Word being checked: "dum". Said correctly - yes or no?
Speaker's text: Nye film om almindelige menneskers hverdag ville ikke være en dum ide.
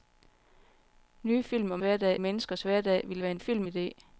no